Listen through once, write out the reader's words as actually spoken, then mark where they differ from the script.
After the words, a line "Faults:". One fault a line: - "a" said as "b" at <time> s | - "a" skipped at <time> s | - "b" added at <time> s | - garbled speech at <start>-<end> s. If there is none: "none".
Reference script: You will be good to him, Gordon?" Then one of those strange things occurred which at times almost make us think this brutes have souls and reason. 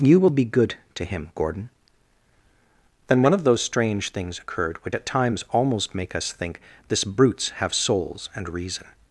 You will be good to him, Gordon?" Then one of those strange things occurred which at times almost make us think this brutes have souls and reason.
Faults:
none